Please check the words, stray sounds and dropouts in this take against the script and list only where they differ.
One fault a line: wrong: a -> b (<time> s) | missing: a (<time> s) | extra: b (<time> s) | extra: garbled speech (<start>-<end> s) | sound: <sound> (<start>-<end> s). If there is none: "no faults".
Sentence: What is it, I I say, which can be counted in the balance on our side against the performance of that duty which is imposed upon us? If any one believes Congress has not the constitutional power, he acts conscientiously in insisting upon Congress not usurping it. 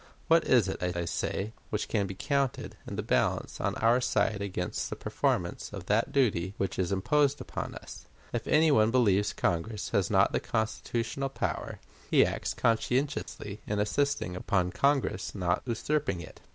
sound: dropout (13.2-13.3 s)